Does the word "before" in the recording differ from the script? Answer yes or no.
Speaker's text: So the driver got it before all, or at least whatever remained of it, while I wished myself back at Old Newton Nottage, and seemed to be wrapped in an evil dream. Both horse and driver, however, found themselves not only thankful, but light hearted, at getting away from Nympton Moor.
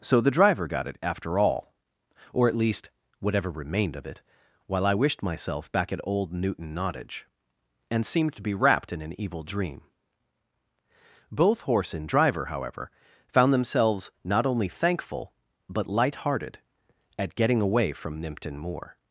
yes